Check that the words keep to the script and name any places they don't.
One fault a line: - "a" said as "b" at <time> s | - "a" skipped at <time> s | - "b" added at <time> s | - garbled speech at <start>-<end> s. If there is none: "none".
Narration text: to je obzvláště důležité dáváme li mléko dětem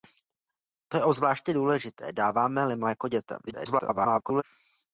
- garbled speech at 3.5-4.4 s